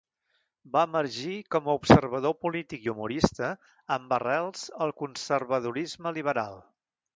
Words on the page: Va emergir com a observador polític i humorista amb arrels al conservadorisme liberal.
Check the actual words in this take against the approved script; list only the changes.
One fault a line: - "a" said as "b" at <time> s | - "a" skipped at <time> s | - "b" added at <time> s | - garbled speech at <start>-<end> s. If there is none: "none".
none